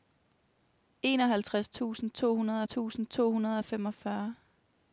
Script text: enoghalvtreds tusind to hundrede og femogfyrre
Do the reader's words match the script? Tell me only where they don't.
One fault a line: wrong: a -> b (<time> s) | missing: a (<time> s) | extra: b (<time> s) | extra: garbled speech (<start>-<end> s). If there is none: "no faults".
extra: tusind to hundrede (2.6 s)